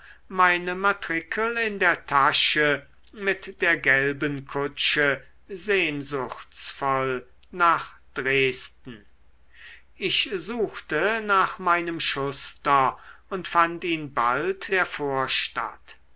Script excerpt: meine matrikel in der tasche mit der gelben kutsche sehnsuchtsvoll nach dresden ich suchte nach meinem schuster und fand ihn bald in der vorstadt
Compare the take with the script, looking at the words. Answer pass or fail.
fail